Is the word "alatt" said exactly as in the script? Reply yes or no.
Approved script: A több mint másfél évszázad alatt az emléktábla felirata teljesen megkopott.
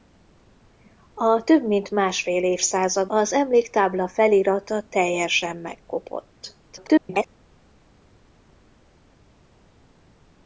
no